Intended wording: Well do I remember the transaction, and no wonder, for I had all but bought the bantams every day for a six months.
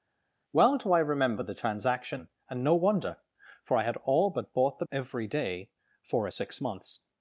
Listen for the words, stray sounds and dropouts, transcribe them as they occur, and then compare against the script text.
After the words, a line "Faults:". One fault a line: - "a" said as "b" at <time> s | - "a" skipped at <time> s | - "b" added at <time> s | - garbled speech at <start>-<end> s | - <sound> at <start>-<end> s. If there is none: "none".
Well do I remember the transaction, and no wonder, for I had all but bought the every day for a six months.
Faults:
- "bantams" skipped at 4.8 s